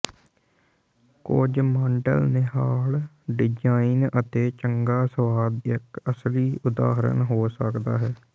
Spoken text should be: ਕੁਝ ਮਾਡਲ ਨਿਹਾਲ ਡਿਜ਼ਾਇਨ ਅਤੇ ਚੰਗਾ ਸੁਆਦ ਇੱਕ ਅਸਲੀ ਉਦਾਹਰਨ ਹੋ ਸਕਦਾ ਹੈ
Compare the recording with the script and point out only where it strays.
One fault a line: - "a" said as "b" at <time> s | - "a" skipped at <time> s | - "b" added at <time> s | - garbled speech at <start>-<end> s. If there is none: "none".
none